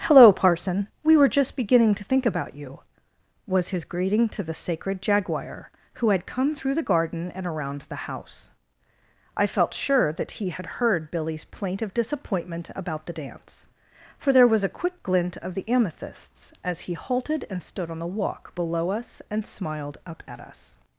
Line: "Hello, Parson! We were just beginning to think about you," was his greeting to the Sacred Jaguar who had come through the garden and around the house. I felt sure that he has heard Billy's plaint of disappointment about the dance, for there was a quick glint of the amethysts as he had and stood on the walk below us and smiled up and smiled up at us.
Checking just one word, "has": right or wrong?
wrong